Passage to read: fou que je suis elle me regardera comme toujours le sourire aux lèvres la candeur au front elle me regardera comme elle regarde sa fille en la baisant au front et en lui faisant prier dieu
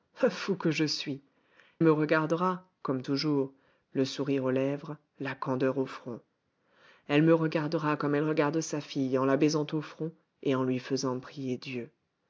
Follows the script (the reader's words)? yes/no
no